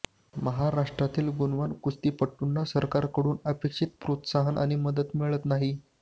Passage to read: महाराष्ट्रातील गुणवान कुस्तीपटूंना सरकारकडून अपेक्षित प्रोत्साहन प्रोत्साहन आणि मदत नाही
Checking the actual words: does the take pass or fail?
fail